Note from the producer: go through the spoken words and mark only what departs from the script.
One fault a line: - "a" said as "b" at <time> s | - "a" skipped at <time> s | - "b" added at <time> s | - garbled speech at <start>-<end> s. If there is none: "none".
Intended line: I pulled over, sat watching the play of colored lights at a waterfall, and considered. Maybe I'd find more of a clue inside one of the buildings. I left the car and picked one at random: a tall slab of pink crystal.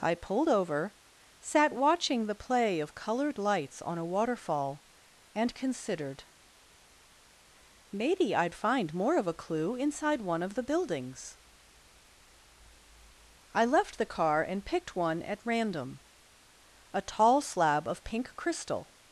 - "at" said as "on" at 3.8 s